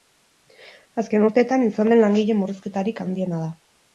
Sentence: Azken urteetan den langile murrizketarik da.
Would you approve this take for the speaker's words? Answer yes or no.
no